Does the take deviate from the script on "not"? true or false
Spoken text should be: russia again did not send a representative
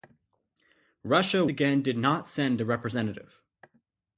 false